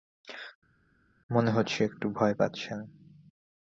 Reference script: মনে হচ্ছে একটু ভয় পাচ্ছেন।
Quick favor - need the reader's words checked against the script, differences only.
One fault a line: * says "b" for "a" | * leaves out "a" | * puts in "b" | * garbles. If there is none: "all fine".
all fine